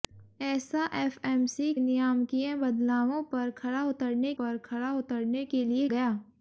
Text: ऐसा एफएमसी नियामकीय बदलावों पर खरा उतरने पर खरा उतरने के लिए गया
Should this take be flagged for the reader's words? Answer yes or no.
no